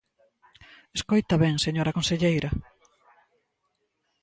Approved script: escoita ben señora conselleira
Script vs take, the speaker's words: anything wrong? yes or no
no